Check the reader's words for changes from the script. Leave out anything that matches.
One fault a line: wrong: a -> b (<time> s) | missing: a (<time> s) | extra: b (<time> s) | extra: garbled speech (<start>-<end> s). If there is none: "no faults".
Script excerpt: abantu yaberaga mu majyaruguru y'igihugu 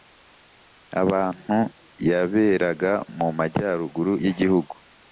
no faults